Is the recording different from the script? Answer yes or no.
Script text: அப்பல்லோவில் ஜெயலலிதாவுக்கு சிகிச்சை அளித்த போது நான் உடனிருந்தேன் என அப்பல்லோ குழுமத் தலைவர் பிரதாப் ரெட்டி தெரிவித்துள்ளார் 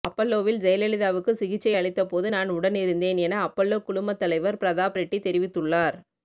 no